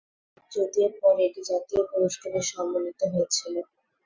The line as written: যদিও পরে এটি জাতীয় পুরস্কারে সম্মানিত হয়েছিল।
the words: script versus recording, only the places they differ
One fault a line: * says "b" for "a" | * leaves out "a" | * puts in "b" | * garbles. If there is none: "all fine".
all fine